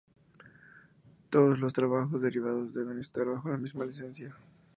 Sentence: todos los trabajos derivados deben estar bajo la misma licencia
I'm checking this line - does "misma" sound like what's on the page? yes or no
yes